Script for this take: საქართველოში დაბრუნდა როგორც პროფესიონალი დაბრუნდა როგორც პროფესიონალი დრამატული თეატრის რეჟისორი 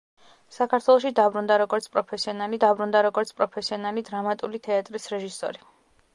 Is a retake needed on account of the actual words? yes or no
no